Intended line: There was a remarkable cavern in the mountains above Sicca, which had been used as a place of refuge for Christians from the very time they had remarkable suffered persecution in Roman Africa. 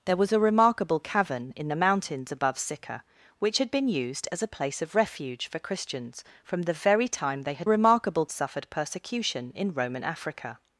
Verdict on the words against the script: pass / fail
pass